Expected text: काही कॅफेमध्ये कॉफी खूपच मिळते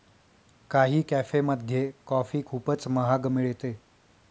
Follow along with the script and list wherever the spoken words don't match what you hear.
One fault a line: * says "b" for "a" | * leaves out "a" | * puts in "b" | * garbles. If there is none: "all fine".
* puts in "महाग"